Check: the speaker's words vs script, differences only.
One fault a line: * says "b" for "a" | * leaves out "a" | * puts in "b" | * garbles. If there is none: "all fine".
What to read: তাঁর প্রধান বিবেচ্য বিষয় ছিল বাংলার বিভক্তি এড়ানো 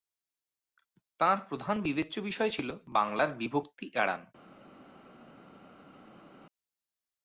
all fine